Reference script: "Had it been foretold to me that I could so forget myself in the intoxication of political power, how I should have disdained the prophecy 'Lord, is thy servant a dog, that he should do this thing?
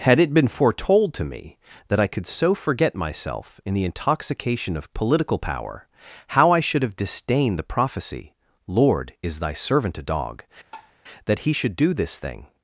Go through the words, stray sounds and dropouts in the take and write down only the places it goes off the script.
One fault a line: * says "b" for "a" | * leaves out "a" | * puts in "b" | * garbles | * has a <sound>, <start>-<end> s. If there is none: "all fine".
* has a tap, 10.7-10.9 s